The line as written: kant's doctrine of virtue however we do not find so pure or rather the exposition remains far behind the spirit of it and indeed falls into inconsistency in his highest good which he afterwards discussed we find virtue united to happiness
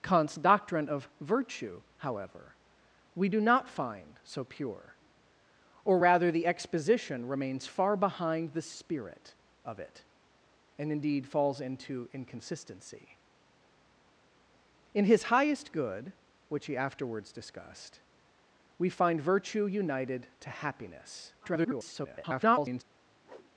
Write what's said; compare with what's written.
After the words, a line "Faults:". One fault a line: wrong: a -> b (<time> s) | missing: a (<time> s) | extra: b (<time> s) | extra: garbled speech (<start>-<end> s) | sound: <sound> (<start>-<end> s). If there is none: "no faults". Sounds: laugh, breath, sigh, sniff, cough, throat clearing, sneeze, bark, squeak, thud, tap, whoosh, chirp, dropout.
kant's doctrine of virtue however we do not find so pure or rather the exposition remains far behind the spirit of it and indeed falls into inconsistency in his highest good which he afterwards discussed we find virtue united to happiness [garbled]
Faults:
extra: garbled speech (21.4-22.8 s)
sound: whoosh (23.2-23.5 s)